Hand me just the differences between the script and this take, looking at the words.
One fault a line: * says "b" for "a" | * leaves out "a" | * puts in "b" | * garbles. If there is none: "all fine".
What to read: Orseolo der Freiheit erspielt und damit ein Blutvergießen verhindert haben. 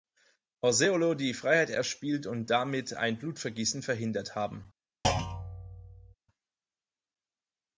* says "die" for "der"